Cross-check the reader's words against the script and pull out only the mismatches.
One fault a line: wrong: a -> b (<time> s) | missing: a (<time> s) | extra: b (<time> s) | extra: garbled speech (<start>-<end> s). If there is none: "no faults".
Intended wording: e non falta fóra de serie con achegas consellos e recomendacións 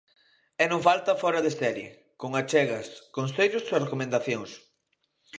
no faults